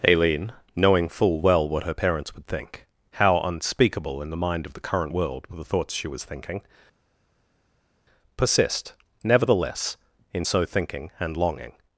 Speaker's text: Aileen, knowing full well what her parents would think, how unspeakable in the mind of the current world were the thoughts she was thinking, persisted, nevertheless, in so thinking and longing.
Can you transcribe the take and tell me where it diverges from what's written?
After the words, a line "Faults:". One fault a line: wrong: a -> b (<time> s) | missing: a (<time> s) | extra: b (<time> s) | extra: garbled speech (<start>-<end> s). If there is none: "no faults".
Aileen, knowing full well what her parents would think, how unspeakable in the mind of the current world were the thoughts she was thinking, persist, nevertheless, in so thinking and longing.
Faults:
wrong: persisted -> persist (8.4 s)